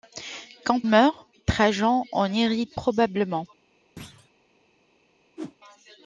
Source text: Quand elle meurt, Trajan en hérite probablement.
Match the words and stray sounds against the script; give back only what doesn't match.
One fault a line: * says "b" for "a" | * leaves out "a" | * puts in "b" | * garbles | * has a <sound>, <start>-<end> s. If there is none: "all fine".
* leaves out "elle"
* has a thud, 4.0-4.3 s
* has a whoosh, 5.4-5.6 s